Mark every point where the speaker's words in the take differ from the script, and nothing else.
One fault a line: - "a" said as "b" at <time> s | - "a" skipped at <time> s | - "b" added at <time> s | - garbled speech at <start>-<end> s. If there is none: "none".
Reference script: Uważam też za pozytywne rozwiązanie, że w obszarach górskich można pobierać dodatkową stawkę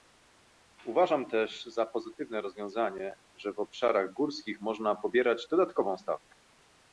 none